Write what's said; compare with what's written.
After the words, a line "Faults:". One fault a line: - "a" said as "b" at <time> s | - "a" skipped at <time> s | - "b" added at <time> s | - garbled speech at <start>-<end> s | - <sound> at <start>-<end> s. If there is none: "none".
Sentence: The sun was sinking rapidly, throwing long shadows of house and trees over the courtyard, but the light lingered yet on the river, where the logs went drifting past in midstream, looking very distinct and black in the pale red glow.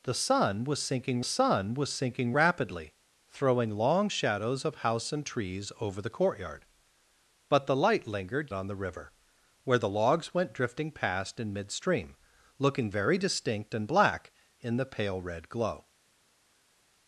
The sun was sinking sun was sinking rapidly, throwing long shadows of house and trees over the courtyard, but the light lingered on the river, where the logs went drifting past in midstream, looking very distinct and black in the pale red glow.
Faults:
- "sun was sinking" added at 1.2 s
- "yet" skipped at 8.5 s